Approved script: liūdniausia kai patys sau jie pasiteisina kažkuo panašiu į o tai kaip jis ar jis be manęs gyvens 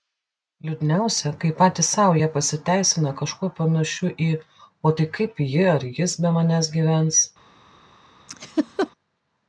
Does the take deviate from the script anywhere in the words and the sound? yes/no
yes